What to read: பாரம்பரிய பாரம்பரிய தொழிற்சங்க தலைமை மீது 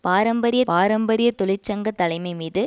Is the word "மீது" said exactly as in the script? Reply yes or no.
yes